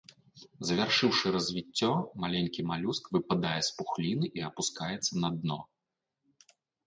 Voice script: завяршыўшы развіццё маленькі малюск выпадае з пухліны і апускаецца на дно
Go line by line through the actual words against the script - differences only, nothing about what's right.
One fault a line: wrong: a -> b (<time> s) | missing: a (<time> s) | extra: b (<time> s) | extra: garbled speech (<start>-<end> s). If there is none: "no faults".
no faults